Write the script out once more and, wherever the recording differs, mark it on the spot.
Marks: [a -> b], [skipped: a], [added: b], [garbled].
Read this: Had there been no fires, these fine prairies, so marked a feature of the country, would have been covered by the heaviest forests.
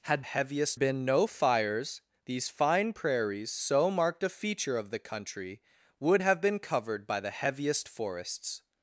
Had [there -> heaviest] been no fires, these fine prairies, so marked a feature of the country, would have been covered by the heaviest forests.